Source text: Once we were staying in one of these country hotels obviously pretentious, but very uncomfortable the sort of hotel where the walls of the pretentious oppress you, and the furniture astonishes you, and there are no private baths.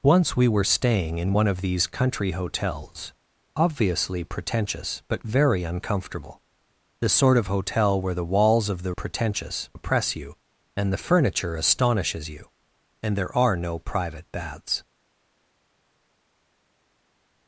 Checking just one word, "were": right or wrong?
right